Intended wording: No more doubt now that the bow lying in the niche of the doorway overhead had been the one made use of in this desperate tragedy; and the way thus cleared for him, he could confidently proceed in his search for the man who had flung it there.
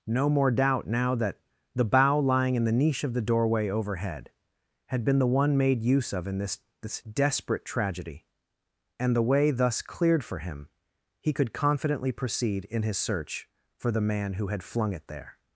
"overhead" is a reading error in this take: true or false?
false